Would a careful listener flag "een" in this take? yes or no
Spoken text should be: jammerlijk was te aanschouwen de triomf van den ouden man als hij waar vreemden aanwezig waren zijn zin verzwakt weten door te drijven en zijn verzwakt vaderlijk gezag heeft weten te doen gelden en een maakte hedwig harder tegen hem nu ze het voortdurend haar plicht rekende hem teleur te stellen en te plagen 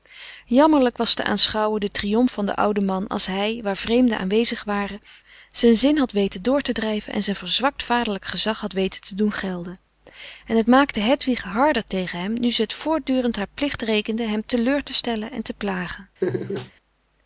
yes